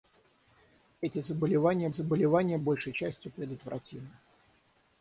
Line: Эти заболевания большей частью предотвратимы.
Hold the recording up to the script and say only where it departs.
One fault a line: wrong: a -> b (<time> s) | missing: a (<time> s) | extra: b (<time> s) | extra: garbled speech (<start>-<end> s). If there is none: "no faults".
extra: заболевания (1.9 s)